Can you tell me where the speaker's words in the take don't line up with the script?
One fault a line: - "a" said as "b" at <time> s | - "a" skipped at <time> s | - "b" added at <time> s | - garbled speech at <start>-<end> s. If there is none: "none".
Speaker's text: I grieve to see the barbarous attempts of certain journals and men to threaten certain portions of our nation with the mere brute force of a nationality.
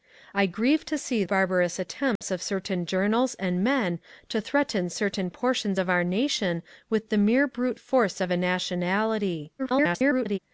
- "the" skipped at 1.2 s
- garbled speech at 9.6-10.4 s